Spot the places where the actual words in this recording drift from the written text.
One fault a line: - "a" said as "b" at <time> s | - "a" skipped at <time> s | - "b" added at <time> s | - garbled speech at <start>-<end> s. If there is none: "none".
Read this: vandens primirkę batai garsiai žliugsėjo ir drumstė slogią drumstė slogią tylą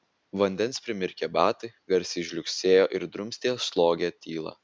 - "drumstė slogią" skipped at 4.1 s